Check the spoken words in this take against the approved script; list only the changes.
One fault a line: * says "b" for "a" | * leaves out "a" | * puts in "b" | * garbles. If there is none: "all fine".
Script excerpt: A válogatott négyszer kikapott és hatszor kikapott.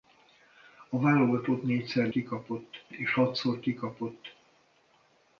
all fine